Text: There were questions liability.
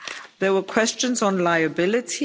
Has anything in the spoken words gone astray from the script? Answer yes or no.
yes